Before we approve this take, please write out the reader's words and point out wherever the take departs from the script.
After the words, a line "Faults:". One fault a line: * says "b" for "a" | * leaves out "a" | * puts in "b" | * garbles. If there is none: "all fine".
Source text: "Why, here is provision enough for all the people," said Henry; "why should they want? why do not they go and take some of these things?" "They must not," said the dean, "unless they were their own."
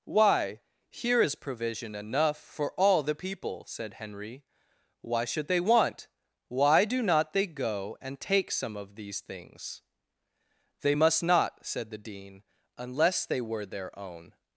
"Why, here is provision enough for all the people," said Henry; "why should they want? why do not they go and take some of these things?" "They must not," said the dean, "unless they were their own."
Faults:
all fine